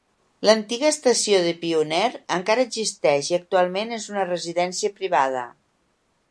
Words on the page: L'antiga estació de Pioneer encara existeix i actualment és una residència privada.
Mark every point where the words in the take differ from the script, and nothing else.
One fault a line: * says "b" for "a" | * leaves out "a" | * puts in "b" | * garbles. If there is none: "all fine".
all fine